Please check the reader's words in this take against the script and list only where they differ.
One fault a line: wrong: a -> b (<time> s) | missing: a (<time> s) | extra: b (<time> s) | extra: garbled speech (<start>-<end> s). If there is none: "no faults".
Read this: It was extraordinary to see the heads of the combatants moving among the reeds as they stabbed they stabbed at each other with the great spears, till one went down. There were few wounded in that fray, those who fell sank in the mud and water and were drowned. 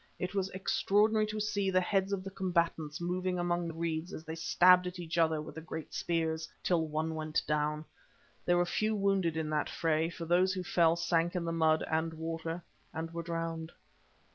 missing: they stabbed (4.9 s)
extra: for (10.1 s)